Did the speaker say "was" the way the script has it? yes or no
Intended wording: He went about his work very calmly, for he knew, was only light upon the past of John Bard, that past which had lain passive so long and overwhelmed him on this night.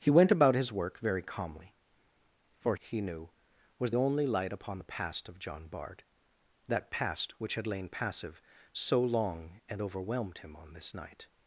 yes